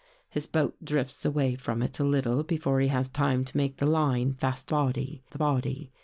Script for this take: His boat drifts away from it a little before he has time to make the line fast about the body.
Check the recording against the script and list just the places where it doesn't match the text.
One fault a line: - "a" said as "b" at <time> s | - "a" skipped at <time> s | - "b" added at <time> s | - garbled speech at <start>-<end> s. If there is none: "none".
- "about" said as "body" at 4.7 s